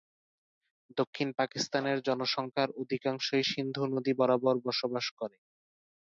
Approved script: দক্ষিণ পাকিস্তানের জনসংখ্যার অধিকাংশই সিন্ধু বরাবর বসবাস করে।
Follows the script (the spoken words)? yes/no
no